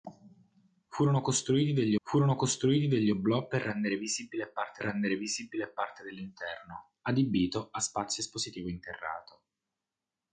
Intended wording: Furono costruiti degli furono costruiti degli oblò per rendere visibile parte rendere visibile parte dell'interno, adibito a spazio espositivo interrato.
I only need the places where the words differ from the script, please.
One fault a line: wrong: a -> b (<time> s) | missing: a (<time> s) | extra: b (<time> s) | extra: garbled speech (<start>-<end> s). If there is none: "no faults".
no faults